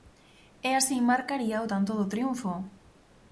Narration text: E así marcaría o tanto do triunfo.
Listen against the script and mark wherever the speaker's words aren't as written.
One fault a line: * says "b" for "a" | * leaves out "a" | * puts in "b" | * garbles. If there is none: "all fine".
all fine